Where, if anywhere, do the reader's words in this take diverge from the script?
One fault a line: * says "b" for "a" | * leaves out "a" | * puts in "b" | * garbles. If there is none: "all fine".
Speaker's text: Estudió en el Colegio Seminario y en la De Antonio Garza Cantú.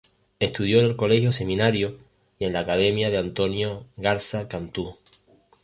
* puts in "Academia"